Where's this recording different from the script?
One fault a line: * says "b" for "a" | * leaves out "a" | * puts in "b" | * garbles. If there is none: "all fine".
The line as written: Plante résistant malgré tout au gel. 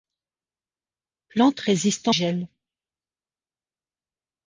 * leaves out "malgré tout au"